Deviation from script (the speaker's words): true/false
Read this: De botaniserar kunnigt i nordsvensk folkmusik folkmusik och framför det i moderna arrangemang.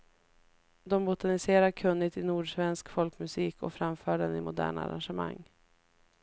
true